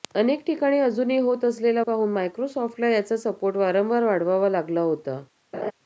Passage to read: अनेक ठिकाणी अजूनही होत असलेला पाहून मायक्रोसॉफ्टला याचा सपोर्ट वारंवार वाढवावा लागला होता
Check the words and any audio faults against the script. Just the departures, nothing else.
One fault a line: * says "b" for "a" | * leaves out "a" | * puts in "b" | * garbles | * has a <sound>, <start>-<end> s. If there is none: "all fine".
* has a laugh, 5.5-5.7 s